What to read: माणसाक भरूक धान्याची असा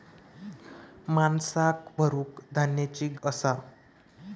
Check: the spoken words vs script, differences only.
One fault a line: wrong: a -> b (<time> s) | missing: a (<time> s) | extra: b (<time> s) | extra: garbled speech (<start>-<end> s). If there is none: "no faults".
no faults